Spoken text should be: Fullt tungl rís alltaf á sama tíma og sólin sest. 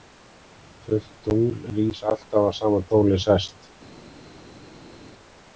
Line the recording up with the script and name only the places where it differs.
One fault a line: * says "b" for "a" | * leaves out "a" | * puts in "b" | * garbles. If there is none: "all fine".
* leaves out "tíma og"